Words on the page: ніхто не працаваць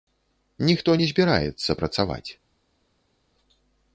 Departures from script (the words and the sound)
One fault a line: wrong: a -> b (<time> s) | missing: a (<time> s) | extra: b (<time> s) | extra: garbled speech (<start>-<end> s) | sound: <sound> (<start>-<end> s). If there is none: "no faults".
extra: збіраецца (1.1 s)